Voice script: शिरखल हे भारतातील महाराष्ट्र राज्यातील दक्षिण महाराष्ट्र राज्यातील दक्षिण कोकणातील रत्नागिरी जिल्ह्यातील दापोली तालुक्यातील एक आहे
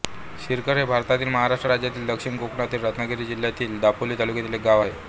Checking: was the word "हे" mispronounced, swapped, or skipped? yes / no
no